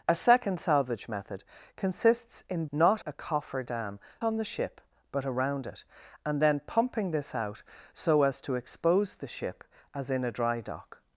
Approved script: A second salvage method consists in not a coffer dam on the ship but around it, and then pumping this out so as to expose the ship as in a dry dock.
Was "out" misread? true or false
false